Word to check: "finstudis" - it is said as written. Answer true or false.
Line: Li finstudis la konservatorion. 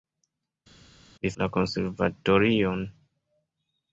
false